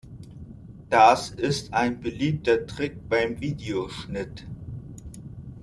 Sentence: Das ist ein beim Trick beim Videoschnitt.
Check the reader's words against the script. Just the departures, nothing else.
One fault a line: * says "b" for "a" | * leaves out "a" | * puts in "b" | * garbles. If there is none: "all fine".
* says "beliebter" for "beim"